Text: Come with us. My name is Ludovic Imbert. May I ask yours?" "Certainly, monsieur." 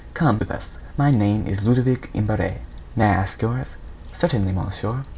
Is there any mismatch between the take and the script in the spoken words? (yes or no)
no